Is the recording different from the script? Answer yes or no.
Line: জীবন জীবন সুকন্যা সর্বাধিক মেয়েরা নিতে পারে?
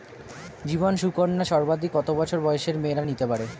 yes